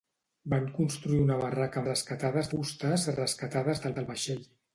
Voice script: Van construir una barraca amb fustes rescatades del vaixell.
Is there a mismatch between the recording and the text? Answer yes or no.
yes